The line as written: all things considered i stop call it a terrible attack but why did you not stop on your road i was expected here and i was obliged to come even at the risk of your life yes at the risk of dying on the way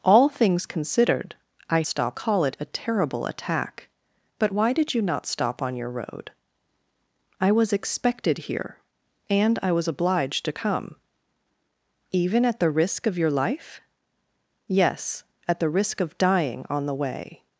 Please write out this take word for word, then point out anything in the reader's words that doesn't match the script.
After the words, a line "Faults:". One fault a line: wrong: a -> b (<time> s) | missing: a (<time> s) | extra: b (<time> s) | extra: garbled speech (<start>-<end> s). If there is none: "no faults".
all things considered i stop call it a terrible attack but why did you not stop on your road i was expected here and i was obliged to come even at the risk of your life yes at the risk of dying on the way
Faults:
no faults